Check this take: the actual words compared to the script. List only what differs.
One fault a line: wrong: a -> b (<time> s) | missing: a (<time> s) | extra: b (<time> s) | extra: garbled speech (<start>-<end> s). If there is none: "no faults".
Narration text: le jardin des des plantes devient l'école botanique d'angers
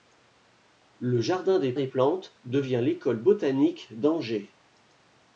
no faults